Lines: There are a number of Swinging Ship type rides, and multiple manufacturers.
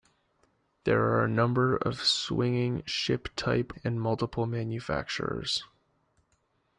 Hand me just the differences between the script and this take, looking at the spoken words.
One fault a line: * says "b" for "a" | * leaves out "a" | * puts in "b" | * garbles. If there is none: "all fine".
* leaves out "rides"